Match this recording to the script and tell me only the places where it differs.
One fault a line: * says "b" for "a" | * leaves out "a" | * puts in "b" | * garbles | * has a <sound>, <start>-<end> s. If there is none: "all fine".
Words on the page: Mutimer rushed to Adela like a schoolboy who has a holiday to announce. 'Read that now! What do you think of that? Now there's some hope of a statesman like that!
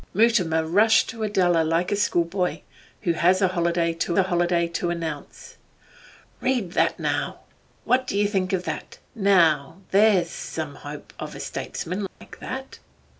* puts in "a holiday to"
* has a dropout, 12.1-12.2 s